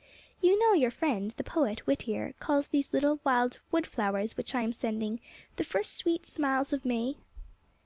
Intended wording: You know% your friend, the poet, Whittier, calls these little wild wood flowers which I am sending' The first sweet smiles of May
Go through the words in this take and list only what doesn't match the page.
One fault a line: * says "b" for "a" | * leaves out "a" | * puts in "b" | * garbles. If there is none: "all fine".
all fine